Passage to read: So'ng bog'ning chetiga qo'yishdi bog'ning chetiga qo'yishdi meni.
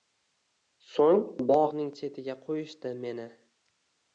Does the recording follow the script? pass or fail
fail